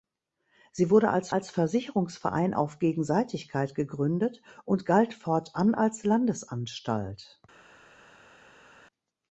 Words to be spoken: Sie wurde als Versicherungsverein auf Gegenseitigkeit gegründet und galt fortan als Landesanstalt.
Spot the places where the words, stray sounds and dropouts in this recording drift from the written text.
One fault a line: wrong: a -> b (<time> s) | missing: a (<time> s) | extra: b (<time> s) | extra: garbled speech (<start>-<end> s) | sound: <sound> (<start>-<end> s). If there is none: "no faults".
extra: als (1.3 s)